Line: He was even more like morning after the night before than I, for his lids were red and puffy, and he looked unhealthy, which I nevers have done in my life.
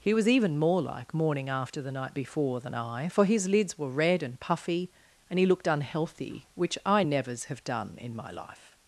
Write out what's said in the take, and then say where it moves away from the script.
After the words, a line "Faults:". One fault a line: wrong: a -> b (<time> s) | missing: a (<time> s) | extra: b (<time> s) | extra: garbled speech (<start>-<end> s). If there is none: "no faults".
He was even more like morning after the night before than I, for his lids were red and puffy, and he looked unhealthy, which I nevers have done in my life.
Faults:
no faults